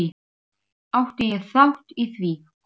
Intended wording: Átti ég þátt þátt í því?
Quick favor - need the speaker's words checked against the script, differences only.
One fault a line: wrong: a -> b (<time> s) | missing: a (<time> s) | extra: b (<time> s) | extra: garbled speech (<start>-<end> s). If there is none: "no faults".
missing: þátt (2.0 s)